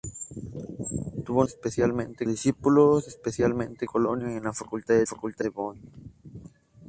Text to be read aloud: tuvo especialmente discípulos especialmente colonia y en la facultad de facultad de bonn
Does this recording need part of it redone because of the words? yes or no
no